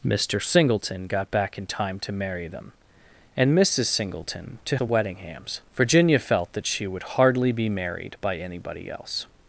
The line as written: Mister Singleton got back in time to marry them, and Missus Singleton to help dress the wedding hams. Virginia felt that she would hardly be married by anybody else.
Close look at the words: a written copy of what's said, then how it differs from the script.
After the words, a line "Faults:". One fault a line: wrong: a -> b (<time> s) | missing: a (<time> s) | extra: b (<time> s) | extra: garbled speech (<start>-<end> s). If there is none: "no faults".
Mister Singleton got back in time to marry them, and Missus Singleton to the wedding hams. Virginia felt that she would hardly be married by anybody else.
Faults:
missing: help dress (4.8 s)